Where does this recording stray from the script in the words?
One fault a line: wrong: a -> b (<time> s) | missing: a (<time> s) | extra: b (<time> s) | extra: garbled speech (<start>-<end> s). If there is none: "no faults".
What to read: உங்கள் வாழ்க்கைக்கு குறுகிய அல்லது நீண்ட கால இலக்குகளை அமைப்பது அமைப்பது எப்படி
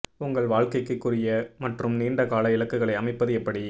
wrong: அல்லது -> மற்றும் (1.6 s)
missing: அமைப்பது (3.3 s)